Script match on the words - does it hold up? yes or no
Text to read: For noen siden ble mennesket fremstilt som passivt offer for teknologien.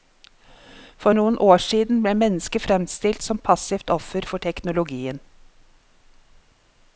no